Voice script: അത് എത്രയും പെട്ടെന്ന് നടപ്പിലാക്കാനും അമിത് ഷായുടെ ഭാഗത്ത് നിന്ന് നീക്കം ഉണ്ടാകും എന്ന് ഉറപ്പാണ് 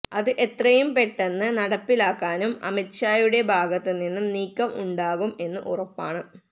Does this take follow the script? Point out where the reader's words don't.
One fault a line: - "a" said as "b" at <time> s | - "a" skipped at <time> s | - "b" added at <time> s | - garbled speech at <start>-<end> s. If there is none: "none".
none